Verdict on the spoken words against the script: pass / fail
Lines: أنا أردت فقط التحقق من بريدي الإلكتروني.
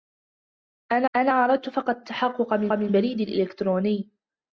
fail